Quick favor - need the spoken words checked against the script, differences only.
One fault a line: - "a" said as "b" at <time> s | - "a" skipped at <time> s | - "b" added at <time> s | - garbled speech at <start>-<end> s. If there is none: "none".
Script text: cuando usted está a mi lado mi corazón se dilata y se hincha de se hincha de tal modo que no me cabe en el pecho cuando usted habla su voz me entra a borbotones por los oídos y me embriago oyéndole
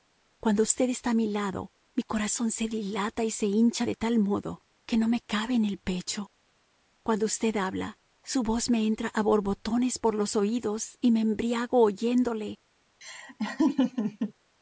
- "se hincha de" skipped at 3.9 s